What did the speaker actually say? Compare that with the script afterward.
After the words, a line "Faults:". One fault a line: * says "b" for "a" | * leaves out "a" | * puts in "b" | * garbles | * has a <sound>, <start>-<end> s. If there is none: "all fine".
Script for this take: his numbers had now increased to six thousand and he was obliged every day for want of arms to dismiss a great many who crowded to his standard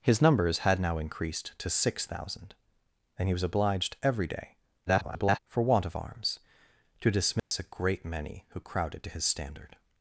his numbers had now increased to six thousand and he was obliged every day [garbled] for want of arms to dismiss a great many who crowded to his standard
Faults:
* garbles
* has a dropout, 7.4-7.5 s